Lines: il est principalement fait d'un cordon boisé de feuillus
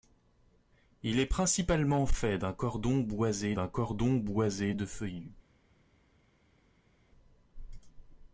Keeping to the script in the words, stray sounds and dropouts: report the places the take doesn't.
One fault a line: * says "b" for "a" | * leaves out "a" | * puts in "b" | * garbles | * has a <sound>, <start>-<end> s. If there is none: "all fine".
* puts in "d'un cordon boisé"